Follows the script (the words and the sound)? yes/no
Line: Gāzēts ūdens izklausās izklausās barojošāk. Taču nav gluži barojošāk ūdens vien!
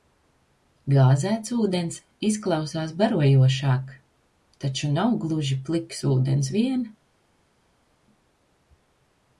no